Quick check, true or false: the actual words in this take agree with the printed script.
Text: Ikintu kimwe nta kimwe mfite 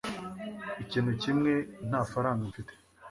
false